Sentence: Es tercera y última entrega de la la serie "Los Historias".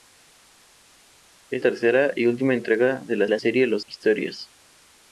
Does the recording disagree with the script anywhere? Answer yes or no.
no